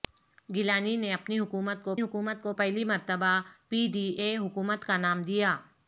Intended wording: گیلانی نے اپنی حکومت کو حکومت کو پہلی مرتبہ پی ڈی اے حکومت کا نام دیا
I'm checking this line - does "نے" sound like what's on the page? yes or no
yes